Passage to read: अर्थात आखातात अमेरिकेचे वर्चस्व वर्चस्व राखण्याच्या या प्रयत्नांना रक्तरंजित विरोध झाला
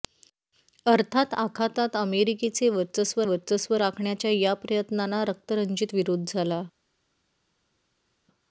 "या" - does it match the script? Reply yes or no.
yes